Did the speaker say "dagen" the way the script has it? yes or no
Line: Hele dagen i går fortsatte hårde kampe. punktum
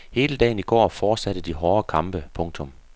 yes